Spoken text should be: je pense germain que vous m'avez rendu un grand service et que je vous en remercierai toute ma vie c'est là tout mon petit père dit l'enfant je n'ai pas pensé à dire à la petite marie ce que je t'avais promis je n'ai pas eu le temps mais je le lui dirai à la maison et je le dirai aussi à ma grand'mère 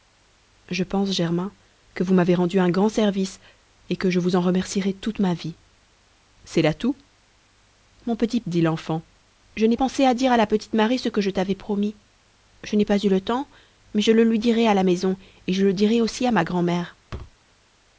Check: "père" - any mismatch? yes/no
yes